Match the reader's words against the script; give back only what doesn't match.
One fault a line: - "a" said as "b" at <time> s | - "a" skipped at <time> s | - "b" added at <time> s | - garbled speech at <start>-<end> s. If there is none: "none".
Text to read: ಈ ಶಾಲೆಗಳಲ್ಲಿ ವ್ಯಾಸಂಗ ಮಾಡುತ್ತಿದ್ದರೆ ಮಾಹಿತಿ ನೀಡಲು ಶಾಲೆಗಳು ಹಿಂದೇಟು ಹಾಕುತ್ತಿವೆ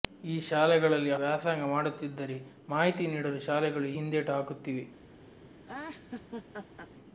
none